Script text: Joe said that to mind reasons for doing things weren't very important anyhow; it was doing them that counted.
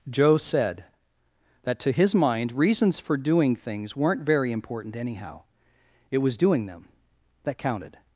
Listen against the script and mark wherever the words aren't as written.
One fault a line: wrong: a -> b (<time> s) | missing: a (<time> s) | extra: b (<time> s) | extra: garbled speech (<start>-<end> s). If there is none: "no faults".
extra: his (1.9 s)